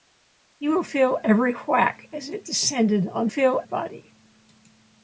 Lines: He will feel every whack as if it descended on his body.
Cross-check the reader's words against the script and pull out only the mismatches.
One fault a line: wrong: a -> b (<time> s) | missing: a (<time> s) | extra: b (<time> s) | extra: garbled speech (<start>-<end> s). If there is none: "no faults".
missing: if (2.3 s)
wrong: his -> feel (3.3 s)